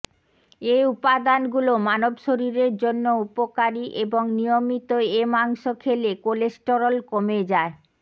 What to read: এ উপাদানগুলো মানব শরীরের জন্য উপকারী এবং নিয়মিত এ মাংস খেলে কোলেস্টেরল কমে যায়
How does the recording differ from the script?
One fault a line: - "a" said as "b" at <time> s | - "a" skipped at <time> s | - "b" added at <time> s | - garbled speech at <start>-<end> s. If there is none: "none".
none